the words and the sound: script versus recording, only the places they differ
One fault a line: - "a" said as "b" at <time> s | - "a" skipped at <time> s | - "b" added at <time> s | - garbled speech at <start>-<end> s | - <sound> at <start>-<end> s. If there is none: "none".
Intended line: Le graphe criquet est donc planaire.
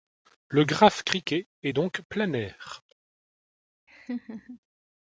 - laugh at 3.9-4.6 s